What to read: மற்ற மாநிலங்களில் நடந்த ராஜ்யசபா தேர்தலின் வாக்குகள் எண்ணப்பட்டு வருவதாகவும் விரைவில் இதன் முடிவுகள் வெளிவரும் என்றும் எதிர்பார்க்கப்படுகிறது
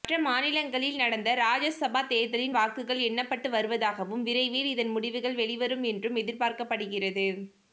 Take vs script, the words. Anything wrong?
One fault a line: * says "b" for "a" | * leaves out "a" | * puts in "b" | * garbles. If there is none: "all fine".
all fine